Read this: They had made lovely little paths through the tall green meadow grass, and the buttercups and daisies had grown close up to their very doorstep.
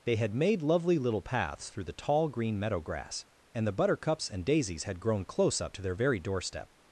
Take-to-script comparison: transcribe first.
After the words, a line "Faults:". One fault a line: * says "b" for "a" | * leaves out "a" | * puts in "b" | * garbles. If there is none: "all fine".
They had made lovely little paths through the tall green meadow grass, and the buttercups and daisies had grown close up to their very doorstep.
Faults:
all fine